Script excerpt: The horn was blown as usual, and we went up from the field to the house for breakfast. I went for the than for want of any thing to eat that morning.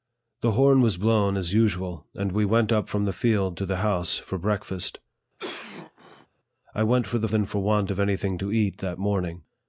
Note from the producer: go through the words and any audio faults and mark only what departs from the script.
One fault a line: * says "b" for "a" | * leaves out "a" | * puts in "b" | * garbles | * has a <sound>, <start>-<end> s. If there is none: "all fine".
* has a cough, 5.4-6.3 s